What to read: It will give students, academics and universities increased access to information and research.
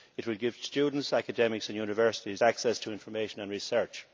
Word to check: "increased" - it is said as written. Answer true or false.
false